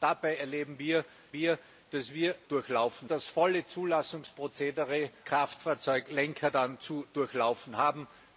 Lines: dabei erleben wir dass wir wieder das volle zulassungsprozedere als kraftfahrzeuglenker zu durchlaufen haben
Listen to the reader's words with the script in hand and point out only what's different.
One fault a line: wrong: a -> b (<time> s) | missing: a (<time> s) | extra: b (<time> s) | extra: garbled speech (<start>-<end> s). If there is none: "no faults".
extra: wir (1.3 s)
wrong: wieder -> durchlaufen (2.5 s)
missing: als (5.1 s)